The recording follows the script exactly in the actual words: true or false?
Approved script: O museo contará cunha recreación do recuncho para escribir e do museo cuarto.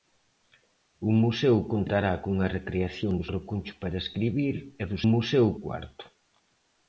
true